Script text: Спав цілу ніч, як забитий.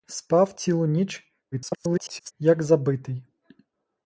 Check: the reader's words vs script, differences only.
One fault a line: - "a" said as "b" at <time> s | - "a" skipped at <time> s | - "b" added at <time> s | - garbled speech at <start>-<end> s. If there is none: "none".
- garbled speech at 1.5-2.3 s